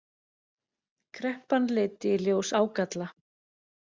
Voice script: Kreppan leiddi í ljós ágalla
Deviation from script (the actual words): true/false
false